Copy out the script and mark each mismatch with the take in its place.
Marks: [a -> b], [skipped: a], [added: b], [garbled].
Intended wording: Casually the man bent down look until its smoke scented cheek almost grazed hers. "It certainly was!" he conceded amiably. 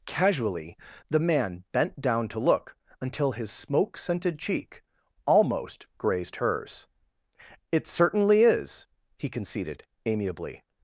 Casually the man bent down [added: to] look until [its -> his] smoke scented cheek almost grazed hers. "It certainly [was!" -> is] he conceded amiably.